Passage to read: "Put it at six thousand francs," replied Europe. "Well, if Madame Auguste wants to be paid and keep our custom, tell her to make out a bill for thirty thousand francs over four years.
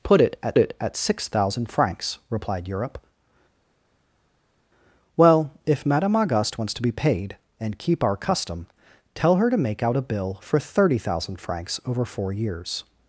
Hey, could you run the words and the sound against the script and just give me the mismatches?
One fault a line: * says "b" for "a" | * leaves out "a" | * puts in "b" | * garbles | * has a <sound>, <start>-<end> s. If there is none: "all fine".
* puts in "it at"